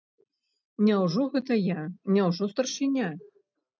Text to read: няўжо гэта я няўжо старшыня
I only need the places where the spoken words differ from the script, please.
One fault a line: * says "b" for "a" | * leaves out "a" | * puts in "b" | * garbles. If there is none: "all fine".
all fine